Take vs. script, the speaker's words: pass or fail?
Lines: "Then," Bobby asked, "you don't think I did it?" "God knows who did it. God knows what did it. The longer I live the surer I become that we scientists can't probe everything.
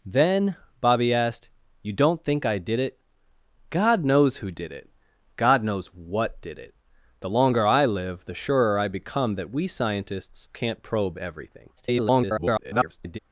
fail